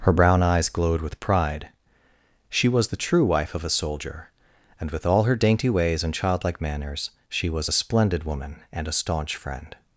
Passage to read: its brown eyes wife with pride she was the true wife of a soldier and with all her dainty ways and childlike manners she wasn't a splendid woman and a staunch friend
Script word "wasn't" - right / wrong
wrong